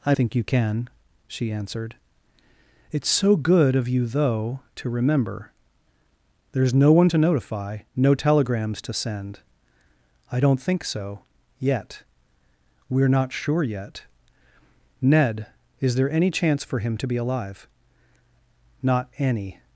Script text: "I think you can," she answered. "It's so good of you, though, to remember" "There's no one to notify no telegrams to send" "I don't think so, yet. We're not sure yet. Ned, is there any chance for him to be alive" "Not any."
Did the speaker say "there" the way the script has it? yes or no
yes